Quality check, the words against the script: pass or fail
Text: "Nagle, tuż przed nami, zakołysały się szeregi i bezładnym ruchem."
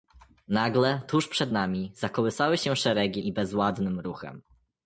pass